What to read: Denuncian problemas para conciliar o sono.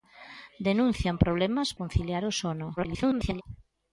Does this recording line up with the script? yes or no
no